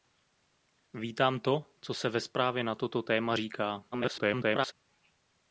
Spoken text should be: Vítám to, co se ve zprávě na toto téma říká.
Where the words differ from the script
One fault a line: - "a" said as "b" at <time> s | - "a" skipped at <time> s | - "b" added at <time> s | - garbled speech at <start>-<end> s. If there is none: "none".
- garbled speech at 3.9-4.7 s